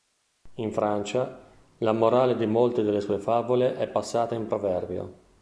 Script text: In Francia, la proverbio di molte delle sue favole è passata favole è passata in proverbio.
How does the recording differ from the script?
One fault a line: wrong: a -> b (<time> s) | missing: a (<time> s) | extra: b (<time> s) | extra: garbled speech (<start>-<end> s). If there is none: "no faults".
wrong: proverbio -> morale (1.9 s)
missing: favole è passata (4.3 s)